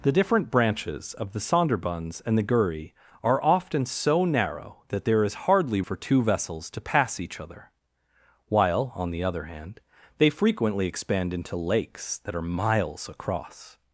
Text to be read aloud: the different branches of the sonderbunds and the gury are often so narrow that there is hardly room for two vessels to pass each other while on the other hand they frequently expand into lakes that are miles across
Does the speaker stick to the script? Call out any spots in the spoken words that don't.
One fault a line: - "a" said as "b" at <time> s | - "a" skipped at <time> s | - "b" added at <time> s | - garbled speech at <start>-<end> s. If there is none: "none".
- "room" skipped at 5.8 s